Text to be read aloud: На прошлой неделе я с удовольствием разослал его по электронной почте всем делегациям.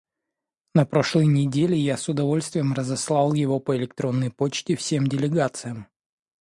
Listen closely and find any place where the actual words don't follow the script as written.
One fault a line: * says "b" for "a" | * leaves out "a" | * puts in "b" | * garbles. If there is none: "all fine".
all fine